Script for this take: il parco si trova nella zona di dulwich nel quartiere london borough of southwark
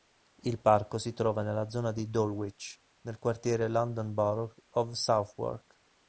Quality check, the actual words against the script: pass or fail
pass